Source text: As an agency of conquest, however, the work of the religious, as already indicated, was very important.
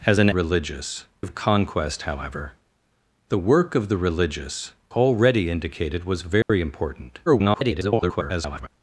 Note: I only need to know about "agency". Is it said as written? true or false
false